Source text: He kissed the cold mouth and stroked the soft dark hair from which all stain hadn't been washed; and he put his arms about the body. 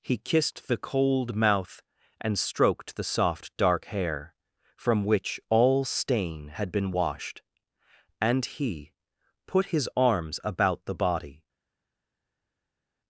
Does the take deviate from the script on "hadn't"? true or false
true